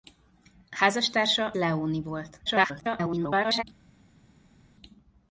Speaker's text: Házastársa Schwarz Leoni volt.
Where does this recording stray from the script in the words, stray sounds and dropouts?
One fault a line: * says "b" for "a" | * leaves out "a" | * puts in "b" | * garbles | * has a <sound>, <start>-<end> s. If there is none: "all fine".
* leaves out "Schwarz"
* garbles